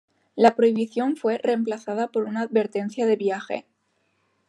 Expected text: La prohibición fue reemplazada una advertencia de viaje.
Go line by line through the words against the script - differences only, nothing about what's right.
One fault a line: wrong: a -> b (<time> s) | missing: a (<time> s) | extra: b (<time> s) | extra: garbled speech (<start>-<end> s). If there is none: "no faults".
extra: por (2.1 s)